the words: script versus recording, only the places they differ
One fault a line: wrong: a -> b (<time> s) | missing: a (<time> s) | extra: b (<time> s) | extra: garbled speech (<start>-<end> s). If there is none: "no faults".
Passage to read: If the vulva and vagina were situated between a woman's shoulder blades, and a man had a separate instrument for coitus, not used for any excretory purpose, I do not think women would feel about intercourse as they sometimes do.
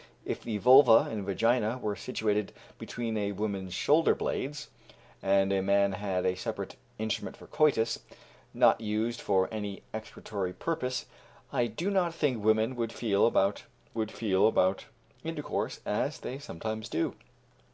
extra: would feel about (13.9 s)